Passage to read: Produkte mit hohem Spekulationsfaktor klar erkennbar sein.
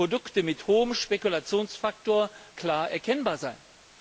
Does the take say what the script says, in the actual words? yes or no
yes